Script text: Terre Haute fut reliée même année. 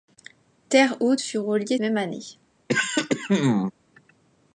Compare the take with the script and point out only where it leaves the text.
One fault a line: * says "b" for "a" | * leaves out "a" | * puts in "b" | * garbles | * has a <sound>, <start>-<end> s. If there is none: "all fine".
* has a throat clearing, 2.7-3.7 s